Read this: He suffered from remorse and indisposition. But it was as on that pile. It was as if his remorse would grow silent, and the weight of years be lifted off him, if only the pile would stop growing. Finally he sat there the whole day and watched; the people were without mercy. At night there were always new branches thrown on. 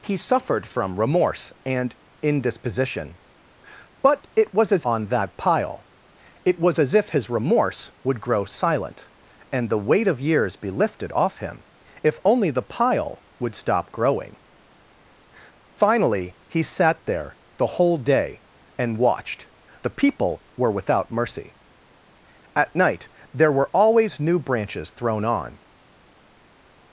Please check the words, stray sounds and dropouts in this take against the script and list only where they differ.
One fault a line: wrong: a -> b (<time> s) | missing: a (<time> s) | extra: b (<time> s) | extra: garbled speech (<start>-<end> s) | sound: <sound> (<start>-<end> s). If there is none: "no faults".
no faults